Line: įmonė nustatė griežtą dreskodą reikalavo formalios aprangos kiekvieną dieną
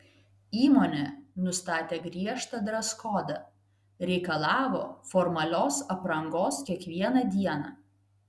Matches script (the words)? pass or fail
pass